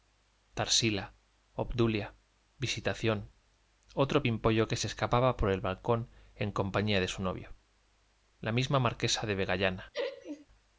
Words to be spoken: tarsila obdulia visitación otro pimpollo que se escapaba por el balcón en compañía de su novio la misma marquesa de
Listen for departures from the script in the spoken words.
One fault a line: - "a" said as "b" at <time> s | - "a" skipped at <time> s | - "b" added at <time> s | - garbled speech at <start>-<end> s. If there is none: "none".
none